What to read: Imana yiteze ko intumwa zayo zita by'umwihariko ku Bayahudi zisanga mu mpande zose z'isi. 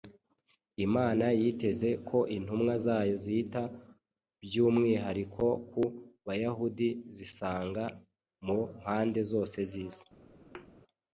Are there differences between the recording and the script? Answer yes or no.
no